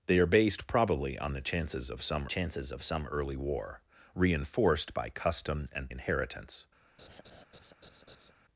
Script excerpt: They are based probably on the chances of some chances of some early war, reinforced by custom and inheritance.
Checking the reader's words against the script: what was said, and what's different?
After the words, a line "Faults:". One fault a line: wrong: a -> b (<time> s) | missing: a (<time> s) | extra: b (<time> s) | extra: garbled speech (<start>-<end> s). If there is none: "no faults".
They are based probably on the chances of some chances of some early war, reinforced by custom and inheritance.
Faults:
no faults